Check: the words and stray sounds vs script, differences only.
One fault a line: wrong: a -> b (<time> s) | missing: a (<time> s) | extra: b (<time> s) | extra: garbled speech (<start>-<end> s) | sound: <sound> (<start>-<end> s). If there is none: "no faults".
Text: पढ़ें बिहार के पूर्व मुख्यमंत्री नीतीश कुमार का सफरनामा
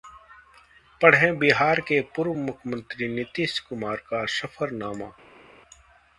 no faults